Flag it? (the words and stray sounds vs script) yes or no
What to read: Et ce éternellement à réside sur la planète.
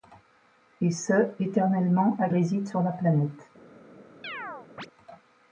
yes